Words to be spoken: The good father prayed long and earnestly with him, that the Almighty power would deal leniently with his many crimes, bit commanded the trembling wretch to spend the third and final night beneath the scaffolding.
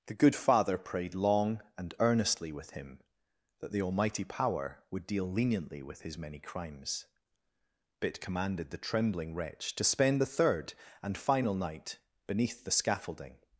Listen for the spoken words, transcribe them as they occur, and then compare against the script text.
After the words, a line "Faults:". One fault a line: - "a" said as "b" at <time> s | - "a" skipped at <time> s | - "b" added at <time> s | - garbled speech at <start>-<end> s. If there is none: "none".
The good father prayed long and earnestly with him, that the Almighty power would deal leniently with his many crimes, bit commanded the trembling wretch to spend the third and final night beneath the scaffolding.
Faults:
none